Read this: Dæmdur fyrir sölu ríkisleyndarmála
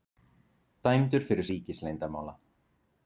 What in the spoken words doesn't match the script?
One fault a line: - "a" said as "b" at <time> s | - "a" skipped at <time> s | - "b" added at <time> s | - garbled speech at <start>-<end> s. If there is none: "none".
- "sölu" skipped at 1.5 s